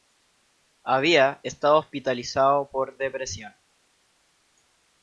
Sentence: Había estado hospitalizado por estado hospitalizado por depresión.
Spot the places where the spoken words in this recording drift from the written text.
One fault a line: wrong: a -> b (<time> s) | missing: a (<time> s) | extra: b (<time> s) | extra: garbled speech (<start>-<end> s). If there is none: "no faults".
missing: estado hospitalizado por (3.0 s)